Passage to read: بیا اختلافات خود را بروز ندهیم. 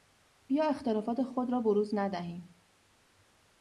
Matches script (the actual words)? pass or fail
pass